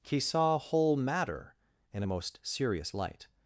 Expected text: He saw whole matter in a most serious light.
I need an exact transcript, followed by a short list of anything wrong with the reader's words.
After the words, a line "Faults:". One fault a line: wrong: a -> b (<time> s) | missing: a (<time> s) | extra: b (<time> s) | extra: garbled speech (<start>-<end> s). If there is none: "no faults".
He saw whole matter in a most serious light.
Faults:
no faults